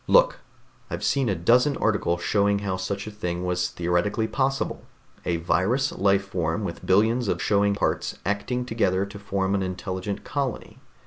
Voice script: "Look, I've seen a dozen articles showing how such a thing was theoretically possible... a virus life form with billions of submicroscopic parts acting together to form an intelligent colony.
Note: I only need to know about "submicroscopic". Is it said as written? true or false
false